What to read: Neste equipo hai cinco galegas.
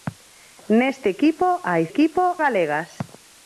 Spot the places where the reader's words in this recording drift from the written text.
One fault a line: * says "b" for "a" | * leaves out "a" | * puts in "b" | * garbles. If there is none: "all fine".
* says "equipo" for "cinco"